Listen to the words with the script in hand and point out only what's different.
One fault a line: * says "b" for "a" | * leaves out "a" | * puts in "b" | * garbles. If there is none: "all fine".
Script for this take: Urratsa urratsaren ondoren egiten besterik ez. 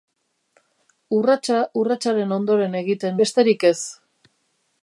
all fine